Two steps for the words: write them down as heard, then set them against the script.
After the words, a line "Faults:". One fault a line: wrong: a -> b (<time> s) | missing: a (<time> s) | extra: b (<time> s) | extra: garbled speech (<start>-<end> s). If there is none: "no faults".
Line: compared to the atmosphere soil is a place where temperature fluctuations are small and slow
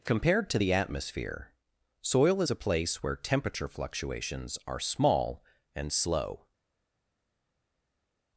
compared to the atmosphere soil is a place where temperature fluctuations are small and slow
Faults:
no faults